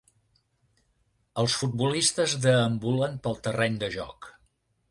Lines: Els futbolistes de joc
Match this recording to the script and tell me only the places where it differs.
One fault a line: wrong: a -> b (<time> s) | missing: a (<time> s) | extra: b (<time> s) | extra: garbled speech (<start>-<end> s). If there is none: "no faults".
extra: deambulen pel terreny (2.5 s)